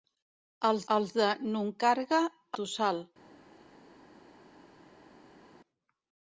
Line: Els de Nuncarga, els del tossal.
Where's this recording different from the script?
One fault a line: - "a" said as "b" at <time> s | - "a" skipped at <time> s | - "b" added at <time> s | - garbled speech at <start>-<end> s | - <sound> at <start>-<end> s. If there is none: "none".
- "els" added at 1.0 s
- "els del" skipped at 2.2 s